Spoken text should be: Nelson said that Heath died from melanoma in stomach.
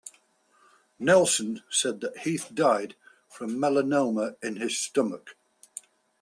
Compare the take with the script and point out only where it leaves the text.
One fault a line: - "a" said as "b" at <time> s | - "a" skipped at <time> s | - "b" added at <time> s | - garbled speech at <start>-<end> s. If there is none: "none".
- "his" added at 4.5 s